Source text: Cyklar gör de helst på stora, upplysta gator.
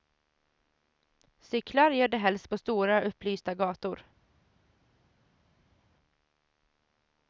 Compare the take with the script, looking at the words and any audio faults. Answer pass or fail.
pass